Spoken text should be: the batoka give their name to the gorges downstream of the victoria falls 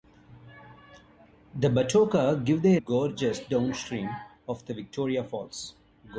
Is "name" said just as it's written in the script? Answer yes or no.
no